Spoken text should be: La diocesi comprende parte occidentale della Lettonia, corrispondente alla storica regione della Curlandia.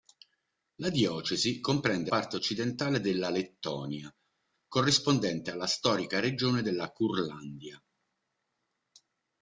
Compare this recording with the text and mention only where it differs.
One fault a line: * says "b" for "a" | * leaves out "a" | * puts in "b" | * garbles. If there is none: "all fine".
all fine